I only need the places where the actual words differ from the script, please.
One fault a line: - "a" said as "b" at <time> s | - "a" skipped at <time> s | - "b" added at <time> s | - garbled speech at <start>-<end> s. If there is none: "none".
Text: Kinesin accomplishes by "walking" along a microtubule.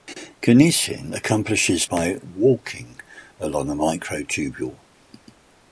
none